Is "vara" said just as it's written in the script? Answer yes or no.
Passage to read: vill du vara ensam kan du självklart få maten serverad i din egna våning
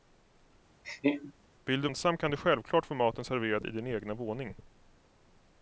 no